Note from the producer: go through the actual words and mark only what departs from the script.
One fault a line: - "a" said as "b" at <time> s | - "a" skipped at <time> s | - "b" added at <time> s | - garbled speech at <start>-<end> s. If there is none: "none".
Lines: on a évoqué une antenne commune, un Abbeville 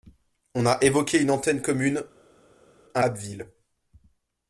none